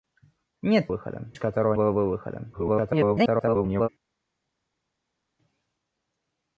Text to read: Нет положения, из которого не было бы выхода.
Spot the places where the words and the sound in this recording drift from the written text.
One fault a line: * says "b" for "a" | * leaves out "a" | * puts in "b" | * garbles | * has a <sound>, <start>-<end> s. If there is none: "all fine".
* says "выхода" for "положения"
* leaves out "не"
* garbles